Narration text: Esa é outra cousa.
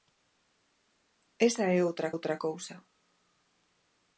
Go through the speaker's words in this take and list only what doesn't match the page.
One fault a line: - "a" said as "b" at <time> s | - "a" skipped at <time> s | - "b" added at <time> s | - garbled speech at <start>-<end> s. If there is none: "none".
- "outra" added at 2.1 s